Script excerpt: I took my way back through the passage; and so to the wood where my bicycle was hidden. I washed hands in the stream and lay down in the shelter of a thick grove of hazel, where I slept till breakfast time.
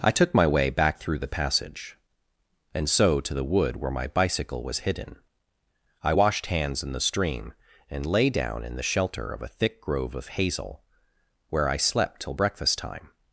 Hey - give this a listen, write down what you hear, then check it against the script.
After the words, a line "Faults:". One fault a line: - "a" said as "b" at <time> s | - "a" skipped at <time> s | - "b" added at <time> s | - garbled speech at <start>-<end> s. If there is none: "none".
I took my way back through the passage; and so to the wood where my bicycle was hidden. I washed hands in the stream and lay down in the shelter of a thick grove of hazel, where I slept till breakfast time.
Faults:
none